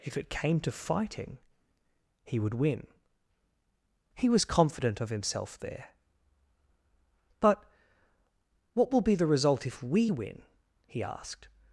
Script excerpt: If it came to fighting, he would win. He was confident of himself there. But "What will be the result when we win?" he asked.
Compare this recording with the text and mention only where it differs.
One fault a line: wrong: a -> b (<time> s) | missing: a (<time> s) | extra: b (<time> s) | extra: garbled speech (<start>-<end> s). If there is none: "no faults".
wrong: when -> if (9.7 s)